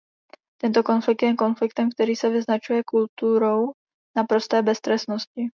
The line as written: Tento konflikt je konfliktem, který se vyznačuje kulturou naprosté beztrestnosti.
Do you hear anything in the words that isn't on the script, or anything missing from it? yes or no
no